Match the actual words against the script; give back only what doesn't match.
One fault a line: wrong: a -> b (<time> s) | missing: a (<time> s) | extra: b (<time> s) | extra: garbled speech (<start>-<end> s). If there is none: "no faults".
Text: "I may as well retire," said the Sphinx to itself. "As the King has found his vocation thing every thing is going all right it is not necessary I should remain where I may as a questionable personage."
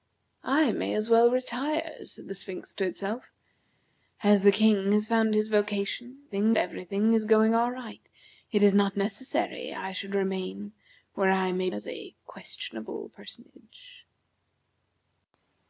no faults